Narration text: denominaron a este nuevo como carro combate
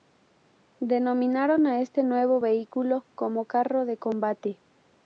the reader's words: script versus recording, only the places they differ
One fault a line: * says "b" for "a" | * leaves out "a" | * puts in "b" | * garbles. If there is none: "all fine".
* puts in "vehículo"
* puts in "de"